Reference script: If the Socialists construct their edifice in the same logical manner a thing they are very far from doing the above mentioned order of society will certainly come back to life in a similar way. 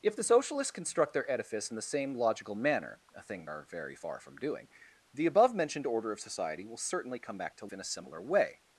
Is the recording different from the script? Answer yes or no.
yes